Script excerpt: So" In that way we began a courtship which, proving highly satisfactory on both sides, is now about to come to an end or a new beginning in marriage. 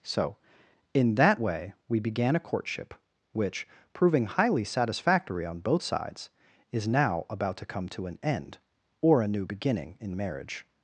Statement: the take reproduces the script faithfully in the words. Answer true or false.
true